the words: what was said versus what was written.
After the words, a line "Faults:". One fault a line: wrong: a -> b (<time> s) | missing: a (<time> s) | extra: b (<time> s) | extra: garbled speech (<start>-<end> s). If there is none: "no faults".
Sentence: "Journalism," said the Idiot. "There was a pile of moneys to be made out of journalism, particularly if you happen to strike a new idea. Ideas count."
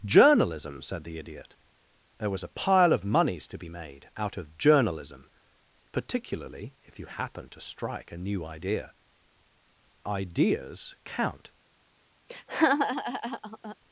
"Journalism," said the Idiot. "There was a pile of moneys to be made out of journalism, particularly if you happen to strike a new idea. Ideas count."
Faults:
no faults